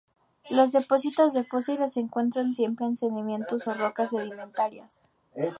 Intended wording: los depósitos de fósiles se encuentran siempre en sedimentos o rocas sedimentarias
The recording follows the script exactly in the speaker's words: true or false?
true